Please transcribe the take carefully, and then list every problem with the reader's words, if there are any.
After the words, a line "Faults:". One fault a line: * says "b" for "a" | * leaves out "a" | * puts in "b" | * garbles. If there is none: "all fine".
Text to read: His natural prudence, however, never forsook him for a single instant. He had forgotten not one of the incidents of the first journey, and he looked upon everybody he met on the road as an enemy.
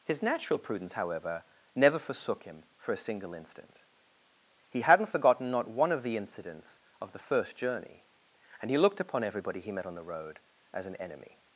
His natural prudence, however, never forsook him for a single instant. He hadn't forgotten not one of the incidents of the first journey, and he looked upon everybody he met on the road as an enemy.
Faults:
* says "hadn't" for "had"